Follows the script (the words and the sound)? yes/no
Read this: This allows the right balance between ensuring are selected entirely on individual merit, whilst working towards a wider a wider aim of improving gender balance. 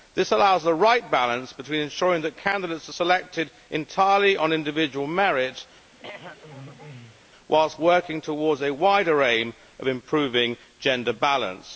no